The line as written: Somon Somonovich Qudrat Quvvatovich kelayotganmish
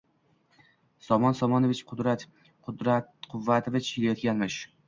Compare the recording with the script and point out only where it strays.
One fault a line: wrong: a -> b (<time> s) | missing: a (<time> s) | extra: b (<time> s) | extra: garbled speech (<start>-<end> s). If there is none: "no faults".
no faults